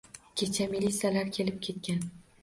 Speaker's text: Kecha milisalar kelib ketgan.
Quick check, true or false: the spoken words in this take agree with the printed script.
true